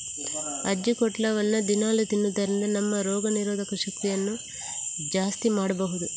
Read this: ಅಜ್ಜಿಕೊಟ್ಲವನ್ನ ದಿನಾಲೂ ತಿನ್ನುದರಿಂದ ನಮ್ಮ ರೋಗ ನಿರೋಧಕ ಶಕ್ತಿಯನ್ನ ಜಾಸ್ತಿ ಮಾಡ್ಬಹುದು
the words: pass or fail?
pass